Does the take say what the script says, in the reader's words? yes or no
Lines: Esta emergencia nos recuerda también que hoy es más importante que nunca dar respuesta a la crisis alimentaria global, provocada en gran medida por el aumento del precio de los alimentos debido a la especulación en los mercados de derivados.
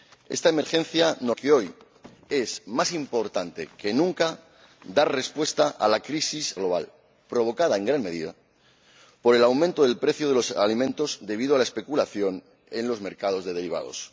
no